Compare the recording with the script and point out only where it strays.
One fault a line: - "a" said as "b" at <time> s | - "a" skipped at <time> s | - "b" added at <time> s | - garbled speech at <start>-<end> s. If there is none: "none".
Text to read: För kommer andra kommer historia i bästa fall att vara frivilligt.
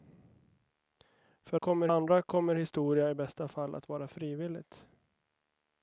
none